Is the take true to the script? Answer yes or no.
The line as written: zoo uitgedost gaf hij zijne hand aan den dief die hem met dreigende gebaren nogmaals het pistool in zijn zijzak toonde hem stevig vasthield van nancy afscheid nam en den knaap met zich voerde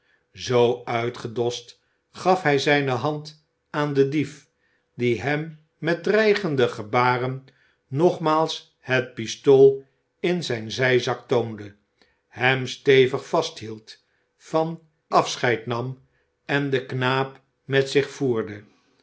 no